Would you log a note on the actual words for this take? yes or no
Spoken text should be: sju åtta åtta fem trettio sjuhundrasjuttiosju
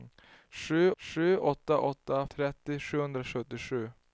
yes